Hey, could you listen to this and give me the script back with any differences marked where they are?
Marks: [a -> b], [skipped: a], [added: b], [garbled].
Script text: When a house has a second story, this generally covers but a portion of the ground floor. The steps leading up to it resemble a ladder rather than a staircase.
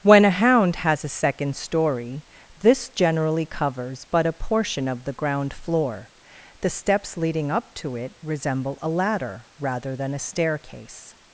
When a [house -> hound] has a second story, this generally covers but a portion of the ground floor. The steps leading up to it resemble a ladder rather than a staircase.